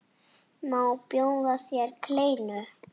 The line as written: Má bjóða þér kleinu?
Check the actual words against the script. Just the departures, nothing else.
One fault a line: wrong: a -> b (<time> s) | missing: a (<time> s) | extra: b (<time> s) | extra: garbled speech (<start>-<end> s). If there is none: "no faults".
no faults